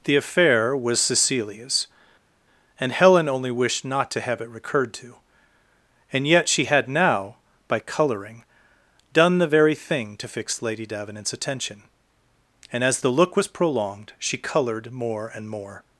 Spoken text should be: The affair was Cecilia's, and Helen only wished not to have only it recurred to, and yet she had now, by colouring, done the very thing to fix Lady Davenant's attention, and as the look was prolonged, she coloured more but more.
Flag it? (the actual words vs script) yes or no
yes